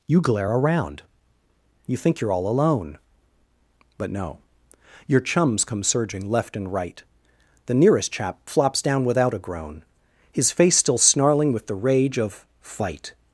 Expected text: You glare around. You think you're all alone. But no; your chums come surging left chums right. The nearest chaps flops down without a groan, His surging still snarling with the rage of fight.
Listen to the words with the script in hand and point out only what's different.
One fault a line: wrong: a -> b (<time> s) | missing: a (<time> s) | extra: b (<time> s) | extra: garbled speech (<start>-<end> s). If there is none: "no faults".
wrong: chums -> and (6.6 s)
wrong: chaps -> chap (8.1 s)
wrong: surging -> face (10.5 s)